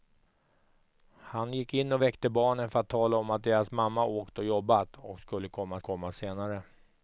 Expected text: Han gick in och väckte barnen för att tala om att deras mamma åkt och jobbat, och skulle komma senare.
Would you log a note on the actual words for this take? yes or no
yes